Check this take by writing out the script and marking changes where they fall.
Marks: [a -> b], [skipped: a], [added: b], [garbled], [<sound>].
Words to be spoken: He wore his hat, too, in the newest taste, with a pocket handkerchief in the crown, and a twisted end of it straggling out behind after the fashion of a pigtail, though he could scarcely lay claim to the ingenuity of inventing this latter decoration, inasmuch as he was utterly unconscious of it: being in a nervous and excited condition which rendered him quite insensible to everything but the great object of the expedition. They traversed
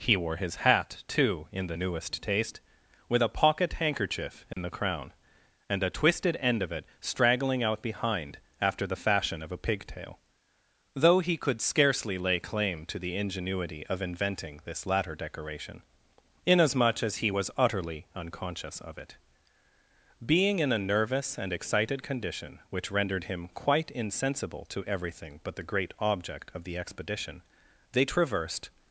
He wore his hat, too, in the newest taste, with a pocket handkerchief in [dropout] the crown, and a twisted end of it straggling out behind after the fashion of a pigtail, though he could scarcely lay claim to the ingenuity of inventing this latter decoration, inasmuch as he was utterly unconscious of it: being in a nervous and excited condition which rendered him quite insensible to everything but the great object of the expedition. They traversed